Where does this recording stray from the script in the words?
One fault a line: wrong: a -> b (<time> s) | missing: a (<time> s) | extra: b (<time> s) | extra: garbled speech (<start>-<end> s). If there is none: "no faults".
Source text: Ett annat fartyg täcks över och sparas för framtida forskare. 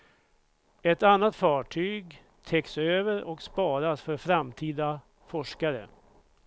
no faults